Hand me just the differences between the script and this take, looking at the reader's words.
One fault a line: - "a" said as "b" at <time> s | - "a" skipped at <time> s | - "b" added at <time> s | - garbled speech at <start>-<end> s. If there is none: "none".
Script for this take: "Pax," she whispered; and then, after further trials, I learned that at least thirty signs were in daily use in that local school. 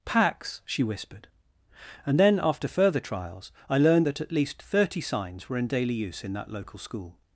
none